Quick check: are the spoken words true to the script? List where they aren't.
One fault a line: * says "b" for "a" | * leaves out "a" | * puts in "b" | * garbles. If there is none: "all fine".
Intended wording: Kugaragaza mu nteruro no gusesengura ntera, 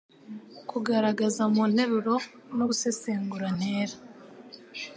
all fine